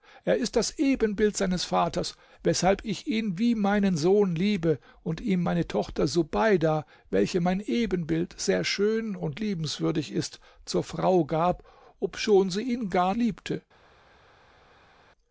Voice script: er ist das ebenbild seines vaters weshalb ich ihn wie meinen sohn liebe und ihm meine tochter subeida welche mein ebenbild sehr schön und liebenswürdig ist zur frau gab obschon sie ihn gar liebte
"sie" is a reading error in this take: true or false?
false